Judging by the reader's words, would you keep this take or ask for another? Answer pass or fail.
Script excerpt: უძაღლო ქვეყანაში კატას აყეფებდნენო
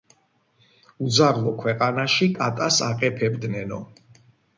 pass